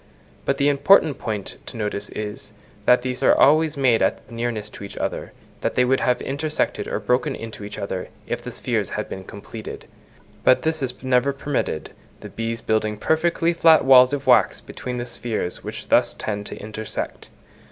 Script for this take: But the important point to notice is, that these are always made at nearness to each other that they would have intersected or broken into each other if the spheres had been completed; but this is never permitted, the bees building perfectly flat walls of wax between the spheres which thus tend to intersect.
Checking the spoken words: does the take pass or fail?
pass